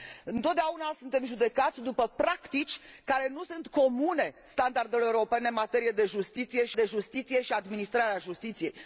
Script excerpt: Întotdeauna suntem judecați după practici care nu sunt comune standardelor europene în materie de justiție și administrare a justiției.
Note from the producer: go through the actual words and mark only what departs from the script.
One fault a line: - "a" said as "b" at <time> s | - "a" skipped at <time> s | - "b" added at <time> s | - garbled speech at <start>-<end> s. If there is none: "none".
- "de justiție și" added at 6.7 s